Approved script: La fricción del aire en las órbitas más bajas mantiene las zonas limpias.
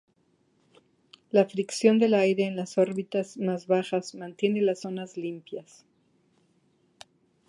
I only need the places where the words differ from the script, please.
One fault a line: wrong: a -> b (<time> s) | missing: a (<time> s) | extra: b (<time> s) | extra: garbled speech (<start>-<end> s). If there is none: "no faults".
no faults